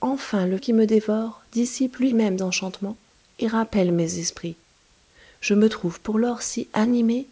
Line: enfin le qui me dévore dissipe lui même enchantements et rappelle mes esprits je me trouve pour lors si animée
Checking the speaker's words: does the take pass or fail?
pass